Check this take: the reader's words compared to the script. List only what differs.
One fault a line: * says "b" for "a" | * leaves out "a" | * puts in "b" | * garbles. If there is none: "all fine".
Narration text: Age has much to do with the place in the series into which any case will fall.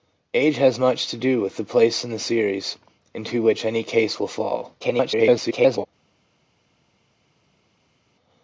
* garbles